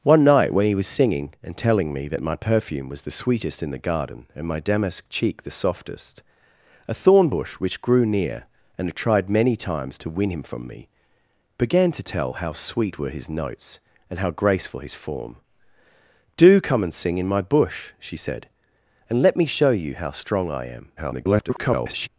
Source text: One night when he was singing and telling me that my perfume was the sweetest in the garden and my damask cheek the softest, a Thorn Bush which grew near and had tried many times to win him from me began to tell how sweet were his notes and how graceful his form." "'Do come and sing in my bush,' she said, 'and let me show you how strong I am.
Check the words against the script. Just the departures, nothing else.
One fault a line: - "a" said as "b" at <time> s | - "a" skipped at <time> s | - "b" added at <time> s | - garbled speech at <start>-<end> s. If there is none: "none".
- garbled speech at 21.0-22.1 s